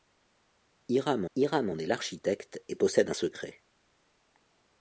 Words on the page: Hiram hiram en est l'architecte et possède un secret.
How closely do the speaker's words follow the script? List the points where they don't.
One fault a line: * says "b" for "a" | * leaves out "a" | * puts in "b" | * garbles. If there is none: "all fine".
all fine